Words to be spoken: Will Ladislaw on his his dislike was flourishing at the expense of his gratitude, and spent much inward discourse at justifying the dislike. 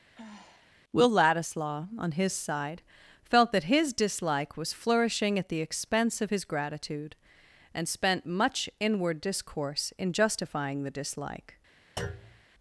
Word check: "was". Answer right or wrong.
right